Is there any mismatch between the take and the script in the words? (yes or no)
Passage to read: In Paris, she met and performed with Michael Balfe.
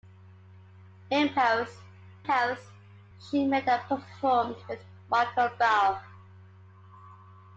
yes